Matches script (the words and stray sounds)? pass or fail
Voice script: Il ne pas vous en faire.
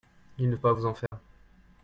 fail